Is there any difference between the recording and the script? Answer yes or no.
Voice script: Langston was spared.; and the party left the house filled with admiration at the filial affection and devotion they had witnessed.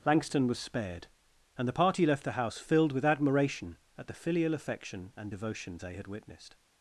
no